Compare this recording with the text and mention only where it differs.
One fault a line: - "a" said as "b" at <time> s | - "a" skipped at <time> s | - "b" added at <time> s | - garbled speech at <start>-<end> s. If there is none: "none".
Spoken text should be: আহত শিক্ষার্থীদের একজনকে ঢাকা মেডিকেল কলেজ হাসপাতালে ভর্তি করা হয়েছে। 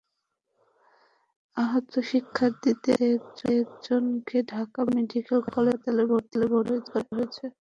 - "মধ্যে" added at 3.1 s